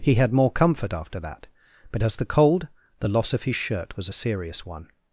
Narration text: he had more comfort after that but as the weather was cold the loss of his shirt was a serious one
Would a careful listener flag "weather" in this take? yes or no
yes